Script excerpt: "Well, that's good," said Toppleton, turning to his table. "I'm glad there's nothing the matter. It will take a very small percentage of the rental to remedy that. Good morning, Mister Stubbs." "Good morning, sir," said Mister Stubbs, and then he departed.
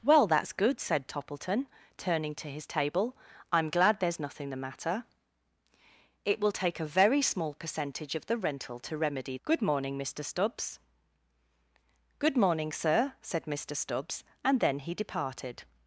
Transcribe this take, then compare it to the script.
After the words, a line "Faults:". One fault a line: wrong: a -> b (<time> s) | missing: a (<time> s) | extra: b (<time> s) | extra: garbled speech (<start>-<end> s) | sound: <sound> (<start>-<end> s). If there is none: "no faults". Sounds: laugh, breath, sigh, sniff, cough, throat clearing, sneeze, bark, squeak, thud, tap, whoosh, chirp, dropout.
"Well, that's good," said Toppleton, turning to his table. "I'm glad there's nothing the matter. It will take a very small percentage of the rental to remedy. Good morning, Mister Stubbs." "Good morning, sir," said Mister Stubbs, and then he departed.
Faults:
missing: that (9.4 s)